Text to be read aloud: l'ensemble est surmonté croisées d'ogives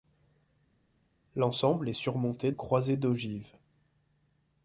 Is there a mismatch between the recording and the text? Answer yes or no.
no